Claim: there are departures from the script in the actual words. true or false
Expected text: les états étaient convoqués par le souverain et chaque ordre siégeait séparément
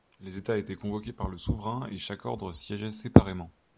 false